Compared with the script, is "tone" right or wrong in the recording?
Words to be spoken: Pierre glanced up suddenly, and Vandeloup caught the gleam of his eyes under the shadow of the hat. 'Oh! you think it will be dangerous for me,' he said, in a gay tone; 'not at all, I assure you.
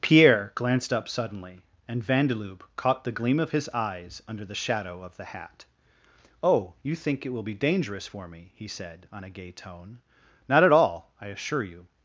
right